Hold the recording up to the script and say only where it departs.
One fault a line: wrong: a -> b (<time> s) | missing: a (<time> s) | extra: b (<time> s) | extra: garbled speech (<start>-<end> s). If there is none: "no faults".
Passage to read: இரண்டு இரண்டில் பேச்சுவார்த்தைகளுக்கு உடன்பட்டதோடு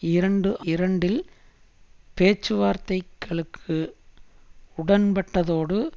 no faults